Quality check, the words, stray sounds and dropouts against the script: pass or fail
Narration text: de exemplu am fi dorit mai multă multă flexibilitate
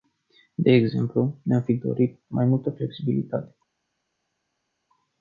fail